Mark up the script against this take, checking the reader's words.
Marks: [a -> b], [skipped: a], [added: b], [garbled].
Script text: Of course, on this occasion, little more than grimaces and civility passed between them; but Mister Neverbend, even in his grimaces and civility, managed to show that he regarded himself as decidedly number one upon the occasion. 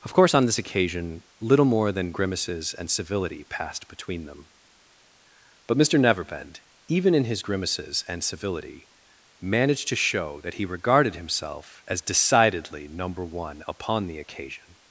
Of course, on this occasion, little more than grimaces and civility passed between them; but Mister Neverbend, even in his grimaces and civility, managed to show that he regarded himself as decidedly number one upon the occasion.